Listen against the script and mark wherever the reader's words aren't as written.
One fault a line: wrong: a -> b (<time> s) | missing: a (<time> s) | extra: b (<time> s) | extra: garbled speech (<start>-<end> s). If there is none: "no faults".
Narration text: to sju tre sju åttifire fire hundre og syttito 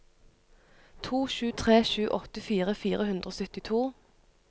no faults